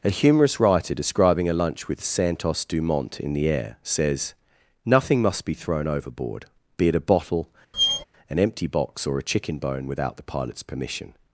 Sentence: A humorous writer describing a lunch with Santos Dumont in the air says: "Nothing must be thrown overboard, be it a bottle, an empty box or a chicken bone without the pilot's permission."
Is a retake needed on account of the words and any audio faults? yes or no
yes